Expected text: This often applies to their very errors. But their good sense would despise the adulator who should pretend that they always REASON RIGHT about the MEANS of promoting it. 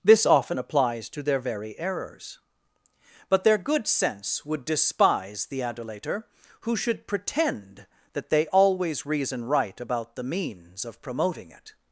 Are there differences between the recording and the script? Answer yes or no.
no